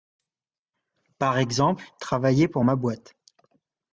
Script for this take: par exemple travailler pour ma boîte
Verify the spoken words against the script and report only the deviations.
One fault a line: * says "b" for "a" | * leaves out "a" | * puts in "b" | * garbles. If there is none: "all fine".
all fine